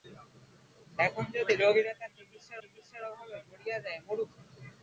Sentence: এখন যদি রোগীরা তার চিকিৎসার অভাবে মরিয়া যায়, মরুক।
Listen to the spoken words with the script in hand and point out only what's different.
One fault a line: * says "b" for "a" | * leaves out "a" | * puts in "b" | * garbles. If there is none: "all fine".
* puts in "চিকিৎসার"